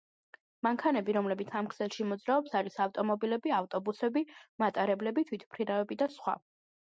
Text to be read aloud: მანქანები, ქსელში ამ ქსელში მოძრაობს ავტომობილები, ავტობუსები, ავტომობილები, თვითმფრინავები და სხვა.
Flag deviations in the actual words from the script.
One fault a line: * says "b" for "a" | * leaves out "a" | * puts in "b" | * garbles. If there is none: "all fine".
* says "რომლებიც" for "ქსელში"
* puts in "არის"
* says "მატარებლები" for "ავტომობილები"